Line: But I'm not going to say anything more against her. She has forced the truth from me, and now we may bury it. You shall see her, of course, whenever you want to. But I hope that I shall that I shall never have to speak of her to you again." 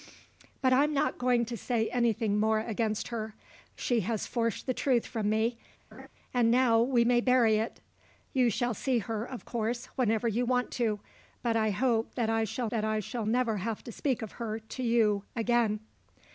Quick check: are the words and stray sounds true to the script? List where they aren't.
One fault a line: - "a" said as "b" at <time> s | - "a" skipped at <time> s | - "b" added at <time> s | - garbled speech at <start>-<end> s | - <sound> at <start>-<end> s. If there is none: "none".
- laugh at 5.9-6.1 s